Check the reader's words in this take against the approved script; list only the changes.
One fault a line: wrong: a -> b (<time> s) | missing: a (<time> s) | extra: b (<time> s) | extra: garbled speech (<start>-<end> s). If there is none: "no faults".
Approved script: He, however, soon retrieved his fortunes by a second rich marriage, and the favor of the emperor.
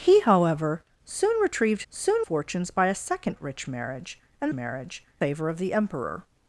wrong: his -> soon (1.9 s)
wrong: the -> marriage (4.5 s)